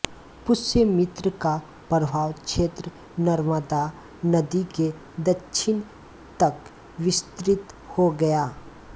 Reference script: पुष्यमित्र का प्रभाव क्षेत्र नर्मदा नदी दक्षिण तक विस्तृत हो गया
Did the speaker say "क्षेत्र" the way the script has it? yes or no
yes